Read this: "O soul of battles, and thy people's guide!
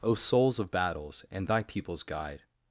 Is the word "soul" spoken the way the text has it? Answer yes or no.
no